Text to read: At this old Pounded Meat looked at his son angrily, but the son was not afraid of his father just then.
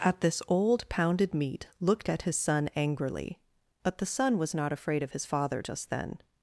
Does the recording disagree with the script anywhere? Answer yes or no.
no